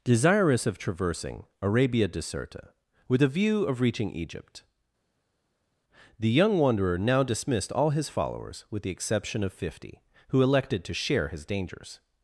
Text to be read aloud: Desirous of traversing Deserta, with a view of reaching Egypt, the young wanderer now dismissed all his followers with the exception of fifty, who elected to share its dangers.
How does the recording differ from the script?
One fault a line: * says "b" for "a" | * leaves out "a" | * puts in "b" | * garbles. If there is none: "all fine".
* puts in "Arabia"
* says "his" for "its"